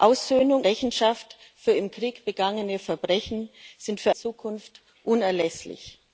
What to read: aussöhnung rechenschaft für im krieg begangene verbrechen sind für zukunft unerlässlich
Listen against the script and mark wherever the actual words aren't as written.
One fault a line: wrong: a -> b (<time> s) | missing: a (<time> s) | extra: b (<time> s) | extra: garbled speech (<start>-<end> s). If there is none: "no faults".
no faults